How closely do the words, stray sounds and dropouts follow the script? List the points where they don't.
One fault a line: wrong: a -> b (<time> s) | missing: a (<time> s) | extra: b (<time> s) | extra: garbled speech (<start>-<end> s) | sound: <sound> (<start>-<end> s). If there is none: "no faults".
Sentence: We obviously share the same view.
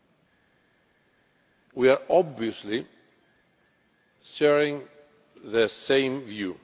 no faults